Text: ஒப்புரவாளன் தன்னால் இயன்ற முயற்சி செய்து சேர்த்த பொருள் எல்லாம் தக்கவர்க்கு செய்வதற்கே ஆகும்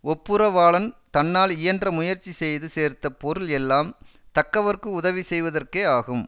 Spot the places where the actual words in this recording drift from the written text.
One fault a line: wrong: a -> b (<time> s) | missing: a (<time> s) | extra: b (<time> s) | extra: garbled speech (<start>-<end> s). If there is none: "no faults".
extra: உதவி (5.0 s)